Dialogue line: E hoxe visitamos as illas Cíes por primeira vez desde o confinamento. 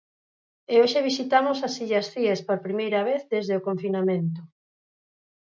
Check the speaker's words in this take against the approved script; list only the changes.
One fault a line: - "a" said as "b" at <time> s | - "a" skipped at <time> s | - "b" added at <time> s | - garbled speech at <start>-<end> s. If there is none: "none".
none